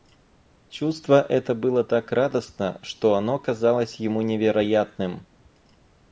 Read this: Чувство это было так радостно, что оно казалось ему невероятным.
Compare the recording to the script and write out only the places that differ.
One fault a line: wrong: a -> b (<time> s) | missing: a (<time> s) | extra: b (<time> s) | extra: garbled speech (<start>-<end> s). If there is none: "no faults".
no faults